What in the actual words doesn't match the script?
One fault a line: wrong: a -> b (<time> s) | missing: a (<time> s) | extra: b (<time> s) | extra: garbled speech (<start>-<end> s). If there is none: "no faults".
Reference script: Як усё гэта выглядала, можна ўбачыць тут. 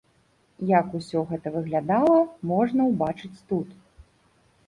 no faults